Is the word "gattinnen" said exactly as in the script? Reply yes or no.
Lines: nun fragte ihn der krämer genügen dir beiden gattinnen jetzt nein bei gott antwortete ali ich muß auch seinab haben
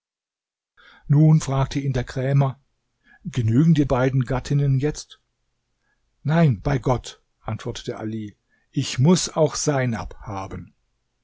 yes